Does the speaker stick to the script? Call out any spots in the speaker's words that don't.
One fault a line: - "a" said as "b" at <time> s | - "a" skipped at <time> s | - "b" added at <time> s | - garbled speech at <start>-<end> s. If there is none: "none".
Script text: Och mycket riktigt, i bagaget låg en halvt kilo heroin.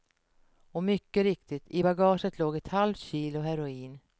- "en" said as "ett" at 2.6 s